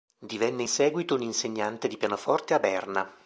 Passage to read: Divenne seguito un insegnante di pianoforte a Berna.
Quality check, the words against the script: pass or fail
pass